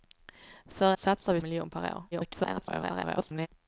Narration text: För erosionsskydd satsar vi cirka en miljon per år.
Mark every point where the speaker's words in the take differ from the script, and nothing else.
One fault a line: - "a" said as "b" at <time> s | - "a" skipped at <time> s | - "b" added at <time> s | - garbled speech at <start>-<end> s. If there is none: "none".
- "erosionsskydd" skipped at 0.9 s
- "cirka en" skipped at 1.4 s
- garbled speech at 2.1-3.5 s